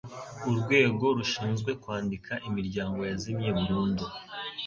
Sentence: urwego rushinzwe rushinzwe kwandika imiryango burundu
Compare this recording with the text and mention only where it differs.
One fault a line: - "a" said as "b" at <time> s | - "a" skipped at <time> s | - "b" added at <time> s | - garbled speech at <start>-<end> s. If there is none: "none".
- "rushinzwe" skipped at 1.7 s
- "yazimye" added at 3.1 s